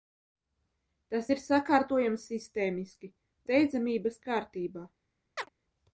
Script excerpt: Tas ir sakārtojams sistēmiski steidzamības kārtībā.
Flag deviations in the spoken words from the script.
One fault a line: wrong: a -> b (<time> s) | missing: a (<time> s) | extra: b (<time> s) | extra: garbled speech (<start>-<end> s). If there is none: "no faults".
no faults